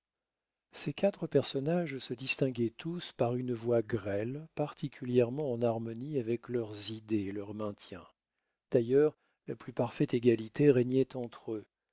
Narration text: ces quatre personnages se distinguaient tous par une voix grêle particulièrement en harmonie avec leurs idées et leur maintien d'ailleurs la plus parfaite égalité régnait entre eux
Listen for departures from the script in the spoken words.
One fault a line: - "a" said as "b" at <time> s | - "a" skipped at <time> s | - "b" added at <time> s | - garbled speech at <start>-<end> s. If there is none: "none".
none